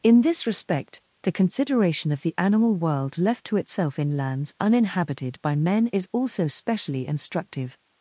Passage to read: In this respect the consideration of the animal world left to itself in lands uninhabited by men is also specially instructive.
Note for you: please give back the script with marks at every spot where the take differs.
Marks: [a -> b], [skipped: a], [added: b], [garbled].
In this respect the consideration of the animal world left to itself in lands uninhabited by men is also specially instructive.